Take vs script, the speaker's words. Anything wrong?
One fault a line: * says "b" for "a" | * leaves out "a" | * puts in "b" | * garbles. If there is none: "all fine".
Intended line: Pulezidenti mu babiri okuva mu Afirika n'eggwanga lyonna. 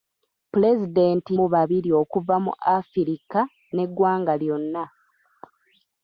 all fine